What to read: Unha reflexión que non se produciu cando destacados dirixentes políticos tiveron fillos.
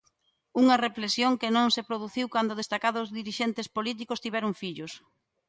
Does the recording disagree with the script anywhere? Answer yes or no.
no